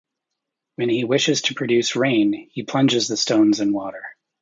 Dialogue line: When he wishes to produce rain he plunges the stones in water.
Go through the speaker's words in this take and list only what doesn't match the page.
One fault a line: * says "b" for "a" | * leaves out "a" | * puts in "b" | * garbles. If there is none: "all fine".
all fine